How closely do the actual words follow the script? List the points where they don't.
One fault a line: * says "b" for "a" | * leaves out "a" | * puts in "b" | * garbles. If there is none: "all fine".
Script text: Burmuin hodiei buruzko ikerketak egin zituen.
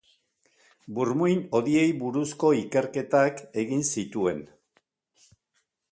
all fine